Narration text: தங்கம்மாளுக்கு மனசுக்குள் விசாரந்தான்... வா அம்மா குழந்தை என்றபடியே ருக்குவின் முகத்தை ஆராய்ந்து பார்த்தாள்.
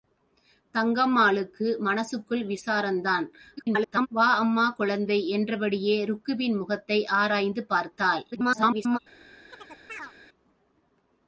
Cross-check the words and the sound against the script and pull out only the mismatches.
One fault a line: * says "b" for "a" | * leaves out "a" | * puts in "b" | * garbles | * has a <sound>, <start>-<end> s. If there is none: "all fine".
* garbles
* garbles
* has a chirp, 9.5-10.1 s